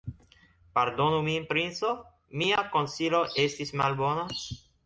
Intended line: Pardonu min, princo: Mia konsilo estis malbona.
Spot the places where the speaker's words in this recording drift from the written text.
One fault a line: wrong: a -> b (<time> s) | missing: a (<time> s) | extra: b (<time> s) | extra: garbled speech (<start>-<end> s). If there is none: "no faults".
no faults